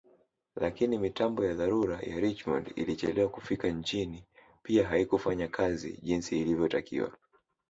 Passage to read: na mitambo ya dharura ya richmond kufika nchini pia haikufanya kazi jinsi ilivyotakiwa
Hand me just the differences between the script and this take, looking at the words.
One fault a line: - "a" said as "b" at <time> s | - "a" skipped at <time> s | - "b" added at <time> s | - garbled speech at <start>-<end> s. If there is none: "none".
- "na" said as "lakini" at 0.6 s
- "ilichelewa" added at 2.8 s